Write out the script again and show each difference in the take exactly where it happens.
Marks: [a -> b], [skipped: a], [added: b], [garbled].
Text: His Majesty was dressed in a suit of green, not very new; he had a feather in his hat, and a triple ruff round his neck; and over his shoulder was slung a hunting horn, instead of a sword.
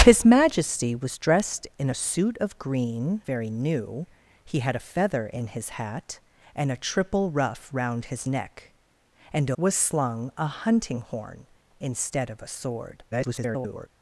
His Majesty was dressed in a suit of green, [skipped: not] very new; he had a feather in his hat, and a triple ruff round his neck; and [skipped: over his shoulder] was slung a hunting horn, instead of a sword. [garbled]